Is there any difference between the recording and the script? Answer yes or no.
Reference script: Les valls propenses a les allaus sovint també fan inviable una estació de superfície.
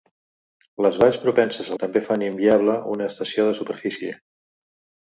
yes